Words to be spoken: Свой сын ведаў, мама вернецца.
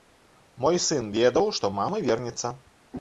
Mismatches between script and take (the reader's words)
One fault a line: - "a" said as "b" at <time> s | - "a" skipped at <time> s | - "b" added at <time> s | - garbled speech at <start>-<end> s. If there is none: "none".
- "Свой" said as "Мой" at 0.6 s
- "што" added at 1.6 s